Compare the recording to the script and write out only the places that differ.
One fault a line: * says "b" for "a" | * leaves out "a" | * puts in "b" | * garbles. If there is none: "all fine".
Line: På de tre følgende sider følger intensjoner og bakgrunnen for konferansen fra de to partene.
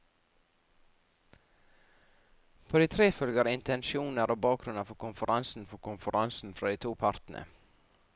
* leaves out "følgende sider"
* puts in "for konferansen"